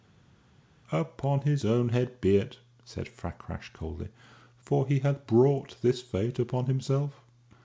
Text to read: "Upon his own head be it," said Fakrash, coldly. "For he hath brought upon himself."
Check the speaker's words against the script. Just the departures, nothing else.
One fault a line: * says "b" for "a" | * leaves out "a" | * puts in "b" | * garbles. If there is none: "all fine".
* puts in "this fate"